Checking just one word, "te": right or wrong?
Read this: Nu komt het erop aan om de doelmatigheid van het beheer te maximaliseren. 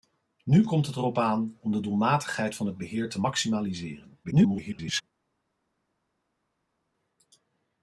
right